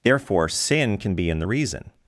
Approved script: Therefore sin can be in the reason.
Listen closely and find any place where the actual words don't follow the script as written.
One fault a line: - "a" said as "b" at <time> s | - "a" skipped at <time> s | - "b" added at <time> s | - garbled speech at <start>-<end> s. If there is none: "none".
none